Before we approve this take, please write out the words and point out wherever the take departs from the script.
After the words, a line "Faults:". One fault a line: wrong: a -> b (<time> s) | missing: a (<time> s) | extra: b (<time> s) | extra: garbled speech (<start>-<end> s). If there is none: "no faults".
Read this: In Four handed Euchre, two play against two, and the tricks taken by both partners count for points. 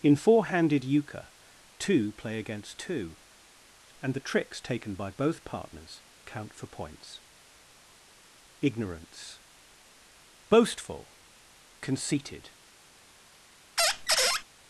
In Four handed Euchre, two play against two, and the tricks taken by both partners count for points. IGNORANCE BOASTFUL, CONCEITED
Faults:
extra: IGNORANCE BOASTFUL CONCEITED (8.6 s)